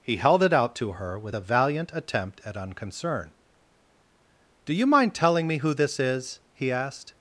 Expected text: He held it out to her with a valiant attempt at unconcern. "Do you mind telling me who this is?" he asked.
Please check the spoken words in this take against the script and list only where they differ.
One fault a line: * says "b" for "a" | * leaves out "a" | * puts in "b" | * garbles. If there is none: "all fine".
all fine